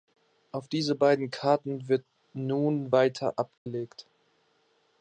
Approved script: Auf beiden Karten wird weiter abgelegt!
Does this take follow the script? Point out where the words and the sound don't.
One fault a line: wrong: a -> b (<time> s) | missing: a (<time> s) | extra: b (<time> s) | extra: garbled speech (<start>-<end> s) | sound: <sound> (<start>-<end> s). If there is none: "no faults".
extra: diese (0.7 s)
extra: nun (2.3 s)
sound: dropout (3.6-3.7 s)